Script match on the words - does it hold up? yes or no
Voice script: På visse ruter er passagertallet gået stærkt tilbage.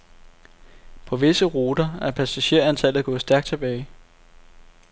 yes